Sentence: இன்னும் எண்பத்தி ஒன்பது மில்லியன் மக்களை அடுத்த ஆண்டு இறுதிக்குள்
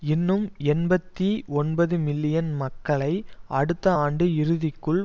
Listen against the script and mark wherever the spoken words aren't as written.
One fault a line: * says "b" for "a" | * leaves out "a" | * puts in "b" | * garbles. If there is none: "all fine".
all fine